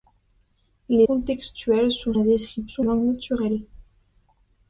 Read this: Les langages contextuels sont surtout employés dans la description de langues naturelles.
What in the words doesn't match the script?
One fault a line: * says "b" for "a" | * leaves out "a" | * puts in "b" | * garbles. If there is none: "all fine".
* leaves out "langages"
* leaves out "surtout employés dans"
* leaves out "de"